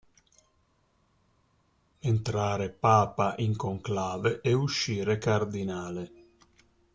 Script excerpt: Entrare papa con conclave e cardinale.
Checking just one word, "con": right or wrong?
wrong